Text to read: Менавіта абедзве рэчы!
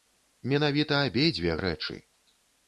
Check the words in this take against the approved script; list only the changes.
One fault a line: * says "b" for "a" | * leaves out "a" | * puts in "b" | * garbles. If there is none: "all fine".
all fine